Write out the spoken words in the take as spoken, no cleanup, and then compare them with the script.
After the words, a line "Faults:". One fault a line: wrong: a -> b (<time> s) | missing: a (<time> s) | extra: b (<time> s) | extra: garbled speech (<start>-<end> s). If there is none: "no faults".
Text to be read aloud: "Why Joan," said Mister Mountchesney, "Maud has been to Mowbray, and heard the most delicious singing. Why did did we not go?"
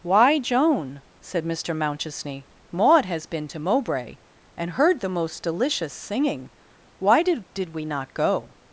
"Why Joan," said Mister Mountchesney, "Maud has been to Mowbray, and heard the most delicious singing. Why did did we not go?"
Faults:
no faults